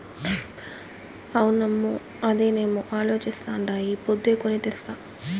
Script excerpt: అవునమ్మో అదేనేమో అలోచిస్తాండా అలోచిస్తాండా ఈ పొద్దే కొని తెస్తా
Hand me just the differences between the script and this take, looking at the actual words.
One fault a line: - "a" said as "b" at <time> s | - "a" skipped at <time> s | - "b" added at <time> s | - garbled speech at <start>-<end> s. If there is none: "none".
- "అలోచిస్తాండా" skipped at 3.7 s